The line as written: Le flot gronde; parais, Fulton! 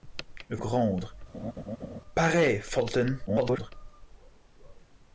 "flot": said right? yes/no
no